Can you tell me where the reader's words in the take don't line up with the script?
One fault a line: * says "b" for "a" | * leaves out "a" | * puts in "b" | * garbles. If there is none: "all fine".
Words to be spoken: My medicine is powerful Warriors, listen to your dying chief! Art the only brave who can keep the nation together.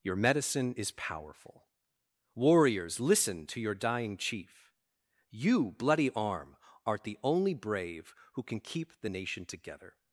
* says "Your" for "My"
* puts in "You Bloody Arm"